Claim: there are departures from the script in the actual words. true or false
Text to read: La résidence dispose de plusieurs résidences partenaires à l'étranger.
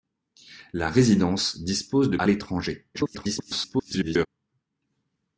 true